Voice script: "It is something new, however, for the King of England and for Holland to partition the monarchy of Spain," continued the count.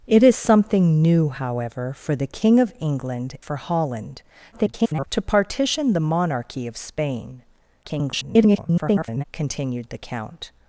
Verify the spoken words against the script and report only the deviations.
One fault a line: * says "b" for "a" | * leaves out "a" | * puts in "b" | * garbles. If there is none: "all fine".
* leaves out "and"
* garbles
* garbles